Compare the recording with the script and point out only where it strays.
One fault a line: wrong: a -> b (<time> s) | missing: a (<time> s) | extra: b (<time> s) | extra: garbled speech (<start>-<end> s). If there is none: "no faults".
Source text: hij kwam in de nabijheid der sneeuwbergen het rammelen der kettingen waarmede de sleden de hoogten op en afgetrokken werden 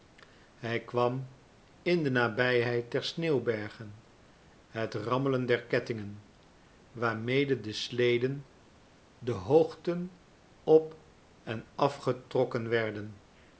no faults